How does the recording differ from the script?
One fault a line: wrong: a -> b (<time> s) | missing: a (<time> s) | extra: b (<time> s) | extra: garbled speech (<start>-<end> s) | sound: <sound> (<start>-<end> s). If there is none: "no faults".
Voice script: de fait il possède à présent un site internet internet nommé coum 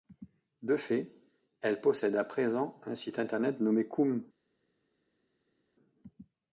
wrong: il -> elle (1.6 s)
missing: internet (3.6 s)